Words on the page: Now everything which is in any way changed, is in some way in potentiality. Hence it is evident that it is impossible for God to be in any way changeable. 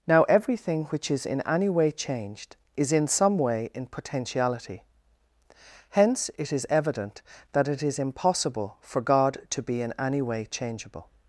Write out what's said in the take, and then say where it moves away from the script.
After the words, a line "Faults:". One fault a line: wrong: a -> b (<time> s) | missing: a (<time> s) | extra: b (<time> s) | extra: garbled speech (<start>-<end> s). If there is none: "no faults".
Now everything which is in any way changed, is in some way in potentiality. Hence it is evident that it is impossible for God to be in any way changeable.
Faults:
no faults